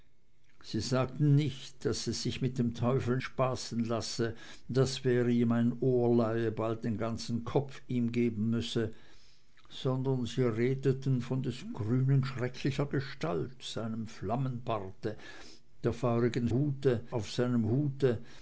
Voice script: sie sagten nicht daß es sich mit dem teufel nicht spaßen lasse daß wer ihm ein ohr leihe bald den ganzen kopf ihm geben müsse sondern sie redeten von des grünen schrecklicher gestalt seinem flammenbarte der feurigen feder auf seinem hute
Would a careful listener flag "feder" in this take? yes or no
yes